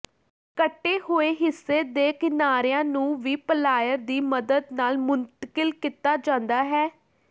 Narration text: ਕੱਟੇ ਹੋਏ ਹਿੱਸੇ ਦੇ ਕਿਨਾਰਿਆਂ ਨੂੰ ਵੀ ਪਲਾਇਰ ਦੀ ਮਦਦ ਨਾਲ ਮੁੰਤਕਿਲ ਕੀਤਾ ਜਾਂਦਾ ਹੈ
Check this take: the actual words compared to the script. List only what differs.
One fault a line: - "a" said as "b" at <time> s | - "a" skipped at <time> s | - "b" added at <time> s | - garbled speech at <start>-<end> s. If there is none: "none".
none